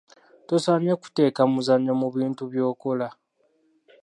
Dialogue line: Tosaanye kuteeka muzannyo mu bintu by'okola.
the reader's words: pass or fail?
pass